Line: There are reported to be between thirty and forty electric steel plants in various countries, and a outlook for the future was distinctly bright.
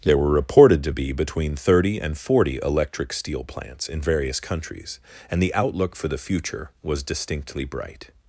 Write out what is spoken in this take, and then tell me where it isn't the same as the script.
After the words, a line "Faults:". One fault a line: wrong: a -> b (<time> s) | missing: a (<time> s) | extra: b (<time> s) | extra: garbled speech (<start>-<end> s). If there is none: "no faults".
There were reported to be between thirty and forty electric steel plants in various countries, and the outlook for the future was distinctly bright.
Faults:
wrong: are -> were (0.2 s)
wrong: a -> the (5.4 s)